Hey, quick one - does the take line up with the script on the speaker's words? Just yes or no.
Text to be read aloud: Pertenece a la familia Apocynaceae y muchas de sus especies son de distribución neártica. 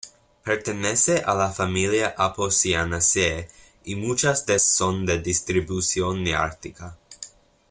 no